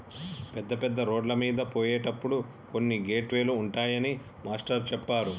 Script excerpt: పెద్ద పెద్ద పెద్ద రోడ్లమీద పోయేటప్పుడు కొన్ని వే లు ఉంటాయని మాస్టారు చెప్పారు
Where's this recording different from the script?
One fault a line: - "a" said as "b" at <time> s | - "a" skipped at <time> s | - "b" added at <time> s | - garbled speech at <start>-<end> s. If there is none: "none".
- "పెద్ద" skipped at 1.0 s
- "గేట్" added at 3.1 s